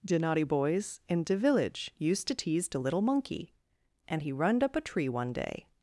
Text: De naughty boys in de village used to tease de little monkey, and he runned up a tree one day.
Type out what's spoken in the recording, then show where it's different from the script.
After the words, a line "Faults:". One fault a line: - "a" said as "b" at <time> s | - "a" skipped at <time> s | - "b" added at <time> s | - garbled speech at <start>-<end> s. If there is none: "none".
De naughty boys in de village used to tease de little monkey, and he runned up a tree one day.
Faults:
none